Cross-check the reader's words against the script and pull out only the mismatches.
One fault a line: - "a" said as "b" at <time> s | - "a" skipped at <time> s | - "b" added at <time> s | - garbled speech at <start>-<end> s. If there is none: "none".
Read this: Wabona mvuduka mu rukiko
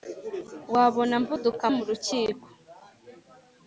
none